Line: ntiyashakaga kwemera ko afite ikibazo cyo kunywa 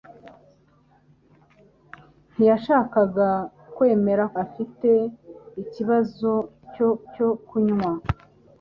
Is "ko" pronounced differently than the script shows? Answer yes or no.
yes